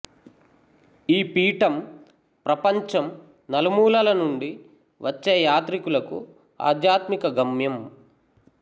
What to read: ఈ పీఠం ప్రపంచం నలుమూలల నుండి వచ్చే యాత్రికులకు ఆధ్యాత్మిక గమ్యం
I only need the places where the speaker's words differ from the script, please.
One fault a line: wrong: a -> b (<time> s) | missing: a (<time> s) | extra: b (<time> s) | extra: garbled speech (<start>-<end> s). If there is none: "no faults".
no faults